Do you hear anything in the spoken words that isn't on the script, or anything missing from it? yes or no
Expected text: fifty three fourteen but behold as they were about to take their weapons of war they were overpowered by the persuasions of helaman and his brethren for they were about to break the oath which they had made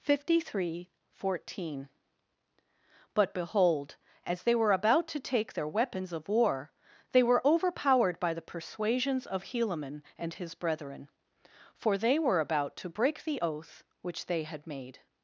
no